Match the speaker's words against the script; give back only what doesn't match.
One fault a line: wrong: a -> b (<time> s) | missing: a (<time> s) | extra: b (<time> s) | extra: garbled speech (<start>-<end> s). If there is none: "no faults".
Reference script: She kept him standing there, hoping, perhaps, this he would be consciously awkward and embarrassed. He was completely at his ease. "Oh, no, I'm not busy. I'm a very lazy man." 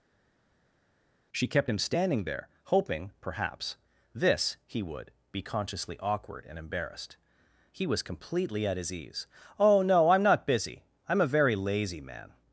no faults